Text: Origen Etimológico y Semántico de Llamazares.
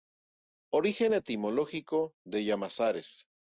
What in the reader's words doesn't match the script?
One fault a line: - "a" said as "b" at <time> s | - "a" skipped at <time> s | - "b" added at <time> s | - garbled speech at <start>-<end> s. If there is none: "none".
- "y Semántico" skipped at 2.1 s